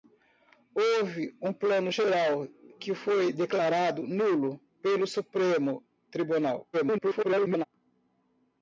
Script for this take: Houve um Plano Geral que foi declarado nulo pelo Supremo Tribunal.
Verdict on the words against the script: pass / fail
fail